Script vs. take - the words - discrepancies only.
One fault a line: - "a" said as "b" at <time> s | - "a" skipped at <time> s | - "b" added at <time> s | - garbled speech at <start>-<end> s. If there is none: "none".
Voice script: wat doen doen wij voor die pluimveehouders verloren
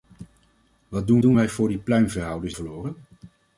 none